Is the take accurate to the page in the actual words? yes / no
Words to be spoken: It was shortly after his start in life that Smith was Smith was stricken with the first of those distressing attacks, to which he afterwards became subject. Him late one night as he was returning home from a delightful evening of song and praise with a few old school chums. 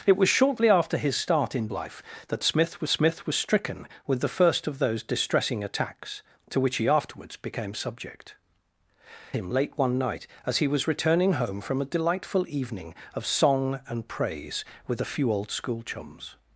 yes